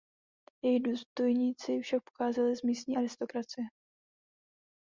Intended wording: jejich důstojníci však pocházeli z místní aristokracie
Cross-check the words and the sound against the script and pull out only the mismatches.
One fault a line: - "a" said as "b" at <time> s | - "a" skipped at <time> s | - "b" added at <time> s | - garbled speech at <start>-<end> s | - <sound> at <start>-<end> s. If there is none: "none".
none